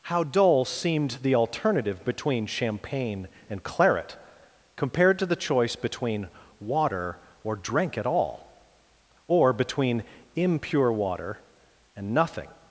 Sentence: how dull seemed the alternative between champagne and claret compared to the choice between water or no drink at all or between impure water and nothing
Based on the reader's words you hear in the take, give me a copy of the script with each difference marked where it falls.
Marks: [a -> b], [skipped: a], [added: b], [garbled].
how dull seemed the alternative between champagne and claret compared to the choice between water or [skipped: no] drink at all or between impure water and nothing